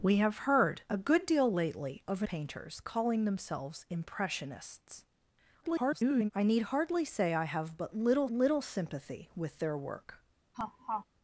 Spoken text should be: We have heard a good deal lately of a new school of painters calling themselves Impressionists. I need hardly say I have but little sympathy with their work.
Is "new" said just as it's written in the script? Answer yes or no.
no